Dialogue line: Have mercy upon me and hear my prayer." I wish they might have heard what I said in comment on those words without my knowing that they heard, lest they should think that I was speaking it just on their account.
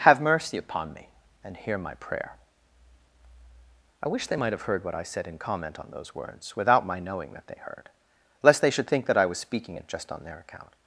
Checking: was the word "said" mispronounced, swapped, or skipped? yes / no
no